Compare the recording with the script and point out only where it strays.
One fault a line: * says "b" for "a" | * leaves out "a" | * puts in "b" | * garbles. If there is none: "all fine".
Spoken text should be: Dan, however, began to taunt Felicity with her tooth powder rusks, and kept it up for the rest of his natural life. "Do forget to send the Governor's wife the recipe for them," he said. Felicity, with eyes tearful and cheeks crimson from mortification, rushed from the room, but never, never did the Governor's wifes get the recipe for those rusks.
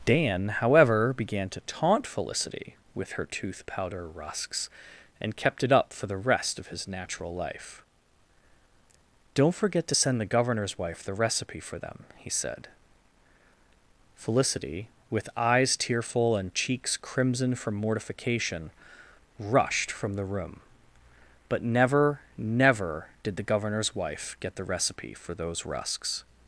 * says "Don't" for "Do"
* says "wife" for "wifes"